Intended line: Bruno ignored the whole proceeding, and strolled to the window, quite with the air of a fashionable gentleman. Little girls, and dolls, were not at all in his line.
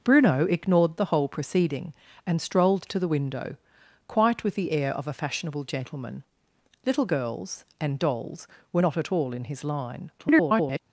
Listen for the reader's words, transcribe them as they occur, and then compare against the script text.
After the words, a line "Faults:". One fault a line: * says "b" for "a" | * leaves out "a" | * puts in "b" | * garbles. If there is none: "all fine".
Bruno ignored the whole proceeding, and strolled to the window, quite with the air of a fashionable gentleman. Little girls, and dolls, were not at all in his line. [garbled]
Faults:
* garbles